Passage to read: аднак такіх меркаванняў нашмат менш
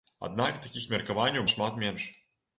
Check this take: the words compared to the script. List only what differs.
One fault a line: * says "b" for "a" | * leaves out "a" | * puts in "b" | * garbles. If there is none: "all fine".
all fine